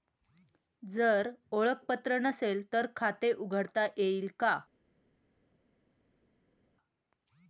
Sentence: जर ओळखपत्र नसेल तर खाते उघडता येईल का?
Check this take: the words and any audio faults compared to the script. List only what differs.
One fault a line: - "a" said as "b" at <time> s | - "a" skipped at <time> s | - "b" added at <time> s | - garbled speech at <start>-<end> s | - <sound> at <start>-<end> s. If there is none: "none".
none